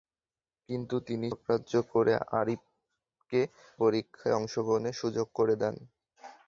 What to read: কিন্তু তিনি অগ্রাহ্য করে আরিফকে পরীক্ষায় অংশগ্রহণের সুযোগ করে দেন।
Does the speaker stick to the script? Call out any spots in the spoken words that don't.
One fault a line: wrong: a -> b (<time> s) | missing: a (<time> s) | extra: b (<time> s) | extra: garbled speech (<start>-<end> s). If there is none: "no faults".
no faults